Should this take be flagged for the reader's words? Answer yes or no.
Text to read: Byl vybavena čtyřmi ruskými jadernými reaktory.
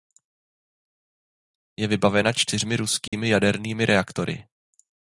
yes